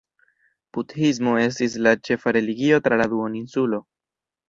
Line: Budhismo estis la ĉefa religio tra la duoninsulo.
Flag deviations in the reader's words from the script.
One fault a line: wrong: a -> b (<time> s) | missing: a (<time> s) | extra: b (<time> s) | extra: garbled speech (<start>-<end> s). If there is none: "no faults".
no faults